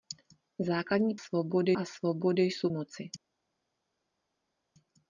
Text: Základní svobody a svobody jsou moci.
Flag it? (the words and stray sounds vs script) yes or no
no